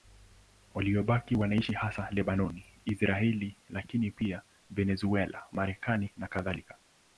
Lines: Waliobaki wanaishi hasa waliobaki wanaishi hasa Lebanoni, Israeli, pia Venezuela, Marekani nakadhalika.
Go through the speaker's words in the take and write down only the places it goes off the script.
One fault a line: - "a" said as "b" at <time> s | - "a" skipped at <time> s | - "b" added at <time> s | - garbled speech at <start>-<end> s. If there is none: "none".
- "waliobaki wanaishi hasa" skipped at 2.1 s
- "lakini" added at 3.7 s